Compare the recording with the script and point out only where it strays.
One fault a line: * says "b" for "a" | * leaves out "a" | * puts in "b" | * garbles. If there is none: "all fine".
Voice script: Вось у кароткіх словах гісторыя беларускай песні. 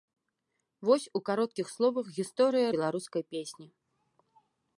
all fine